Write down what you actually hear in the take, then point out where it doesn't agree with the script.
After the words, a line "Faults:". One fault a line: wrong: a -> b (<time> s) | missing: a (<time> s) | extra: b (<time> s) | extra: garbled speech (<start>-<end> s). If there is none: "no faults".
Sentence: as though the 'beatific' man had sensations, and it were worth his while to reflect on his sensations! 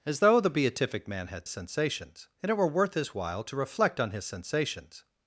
as though the 'beatific' man had sensations, and it were worth his while to reflect on his sensations!
Faults:
no faults